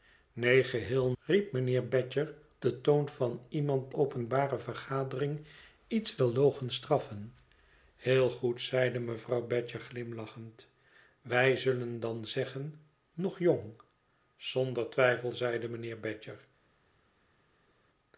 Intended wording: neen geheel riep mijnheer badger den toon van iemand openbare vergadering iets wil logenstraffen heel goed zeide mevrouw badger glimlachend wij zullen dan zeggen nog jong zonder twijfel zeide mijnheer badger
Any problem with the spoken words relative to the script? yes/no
no